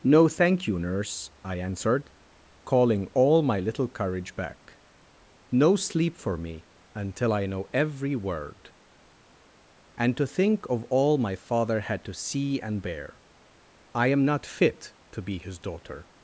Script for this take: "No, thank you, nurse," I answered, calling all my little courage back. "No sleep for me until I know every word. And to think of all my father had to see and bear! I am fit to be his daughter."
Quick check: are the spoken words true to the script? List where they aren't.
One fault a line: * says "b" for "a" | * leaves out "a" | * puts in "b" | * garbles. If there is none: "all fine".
* puts in "not"